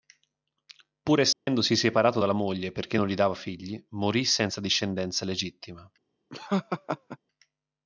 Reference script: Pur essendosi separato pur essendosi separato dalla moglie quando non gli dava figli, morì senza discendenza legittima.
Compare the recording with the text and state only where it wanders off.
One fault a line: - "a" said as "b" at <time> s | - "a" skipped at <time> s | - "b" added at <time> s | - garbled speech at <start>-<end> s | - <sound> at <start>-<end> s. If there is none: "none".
- dropout at 1.3-1.5 s
- "pur essendosi separato" skipped at 2.2 s
- "quando" said as "perché" at 2.7 s
- laugh at 6.3-7.2 s